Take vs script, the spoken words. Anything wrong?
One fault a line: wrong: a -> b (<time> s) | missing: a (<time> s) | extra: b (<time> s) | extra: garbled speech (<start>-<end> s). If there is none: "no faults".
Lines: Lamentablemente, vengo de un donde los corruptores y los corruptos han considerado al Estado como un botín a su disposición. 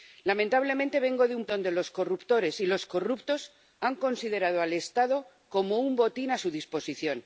no faults